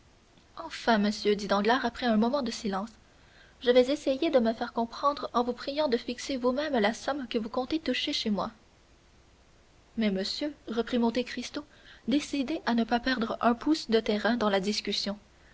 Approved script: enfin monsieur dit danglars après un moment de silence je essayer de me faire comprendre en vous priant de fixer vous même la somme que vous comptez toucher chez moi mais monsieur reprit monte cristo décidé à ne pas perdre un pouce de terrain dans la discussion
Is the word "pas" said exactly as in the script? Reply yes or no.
yes